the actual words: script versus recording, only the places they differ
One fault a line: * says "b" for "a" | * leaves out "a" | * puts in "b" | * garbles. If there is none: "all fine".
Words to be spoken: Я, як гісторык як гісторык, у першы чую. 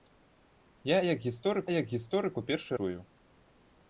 all fine